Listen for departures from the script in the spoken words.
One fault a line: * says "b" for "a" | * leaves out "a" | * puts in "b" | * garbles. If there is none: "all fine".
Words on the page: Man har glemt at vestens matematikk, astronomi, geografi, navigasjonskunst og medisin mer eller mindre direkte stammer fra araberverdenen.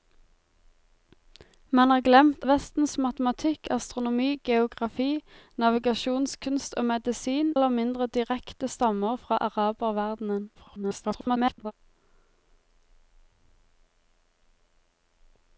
* leaves out "at"
* leaves out "mer"
* garbles